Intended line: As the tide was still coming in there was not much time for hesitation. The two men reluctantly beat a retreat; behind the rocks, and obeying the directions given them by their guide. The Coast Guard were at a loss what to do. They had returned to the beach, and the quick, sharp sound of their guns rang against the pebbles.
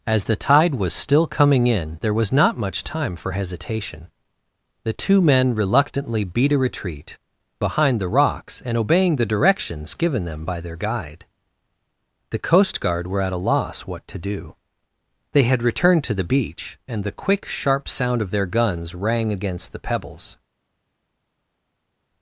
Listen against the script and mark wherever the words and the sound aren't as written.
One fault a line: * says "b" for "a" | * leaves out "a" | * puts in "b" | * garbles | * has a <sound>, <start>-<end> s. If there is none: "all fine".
all fine